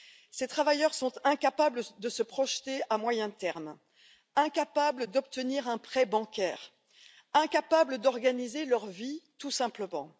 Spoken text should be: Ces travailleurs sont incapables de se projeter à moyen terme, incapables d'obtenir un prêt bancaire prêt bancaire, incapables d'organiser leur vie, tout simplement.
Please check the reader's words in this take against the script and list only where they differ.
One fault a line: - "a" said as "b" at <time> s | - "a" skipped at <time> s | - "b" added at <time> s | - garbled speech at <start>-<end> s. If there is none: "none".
- "prêt bancaire" skipped at 6.7 s